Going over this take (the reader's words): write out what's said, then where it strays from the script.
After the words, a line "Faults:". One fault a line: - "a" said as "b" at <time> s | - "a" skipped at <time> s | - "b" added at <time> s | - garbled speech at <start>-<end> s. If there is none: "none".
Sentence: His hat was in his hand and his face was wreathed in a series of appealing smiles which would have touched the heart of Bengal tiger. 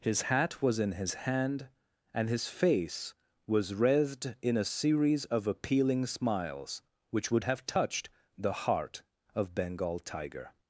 His hat was in his hand and his face was wreathed in a series of appealing smiles which would have touched the heart of Bengal tiger.
Faults:
none